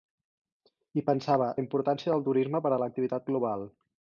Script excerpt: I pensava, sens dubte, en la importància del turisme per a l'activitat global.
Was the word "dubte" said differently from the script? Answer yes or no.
yes